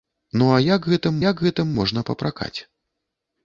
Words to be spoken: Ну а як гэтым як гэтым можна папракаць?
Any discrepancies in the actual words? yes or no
no